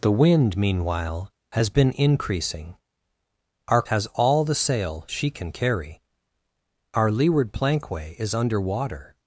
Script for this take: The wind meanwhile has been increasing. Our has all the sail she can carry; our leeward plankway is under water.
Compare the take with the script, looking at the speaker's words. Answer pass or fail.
pass